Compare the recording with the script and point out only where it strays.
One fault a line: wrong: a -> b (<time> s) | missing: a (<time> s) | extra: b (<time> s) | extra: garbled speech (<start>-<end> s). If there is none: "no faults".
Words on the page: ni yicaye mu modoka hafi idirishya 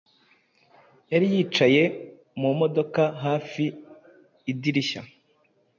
wrong: ni -> yari (1.1 s)